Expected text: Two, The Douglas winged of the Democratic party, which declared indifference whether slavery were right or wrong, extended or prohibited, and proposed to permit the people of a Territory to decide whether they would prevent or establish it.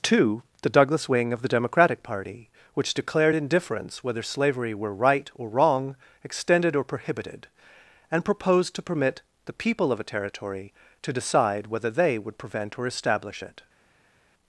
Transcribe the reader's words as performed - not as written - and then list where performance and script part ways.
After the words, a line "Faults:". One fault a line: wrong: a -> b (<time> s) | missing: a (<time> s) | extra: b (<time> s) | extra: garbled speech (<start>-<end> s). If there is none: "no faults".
Two, The Douglas wing of the Democratic party, which declared indifference whether slavery were right or wrong, extended or prohibited, and proposed to permit the people of a Territory to decide whether they would prevent or establish it.
Faults:
wrong: winged -> wing (1.1 s)